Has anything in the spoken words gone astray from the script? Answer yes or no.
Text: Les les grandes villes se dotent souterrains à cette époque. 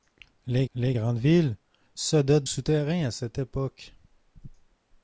no